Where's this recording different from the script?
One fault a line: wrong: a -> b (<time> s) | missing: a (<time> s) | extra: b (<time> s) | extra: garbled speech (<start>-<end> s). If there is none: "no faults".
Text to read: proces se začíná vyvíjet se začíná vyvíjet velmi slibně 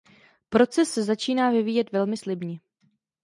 missing: se začíná vyvíjet (1.9 s)